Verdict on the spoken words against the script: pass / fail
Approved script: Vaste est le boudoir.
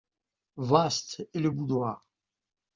pass